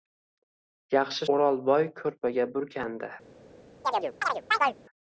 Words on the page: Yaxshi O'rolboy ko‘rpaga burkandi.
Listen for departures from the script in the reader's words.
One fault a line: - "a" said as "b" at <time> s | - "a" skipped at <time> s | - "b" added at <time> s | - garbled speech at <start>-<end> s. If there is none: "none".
none